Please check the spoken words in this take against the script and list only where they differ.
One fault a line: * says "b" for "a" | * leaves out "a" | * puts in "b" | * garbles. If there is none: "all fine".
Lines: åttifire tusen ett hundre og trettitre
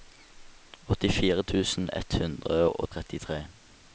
all fine